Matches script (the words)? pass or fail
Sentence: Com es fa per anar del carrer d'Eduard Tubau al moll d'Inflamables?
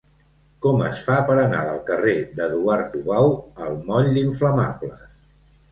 pass